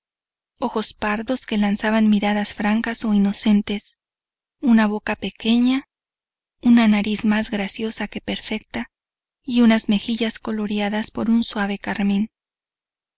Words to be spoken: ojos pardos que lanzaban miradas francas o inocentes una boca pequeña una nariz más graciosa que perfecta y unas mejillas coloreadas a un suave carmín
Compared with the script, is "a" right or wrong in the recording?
wrong